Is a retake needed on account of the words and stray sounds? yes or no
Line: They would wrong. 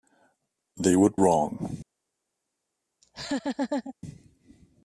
yes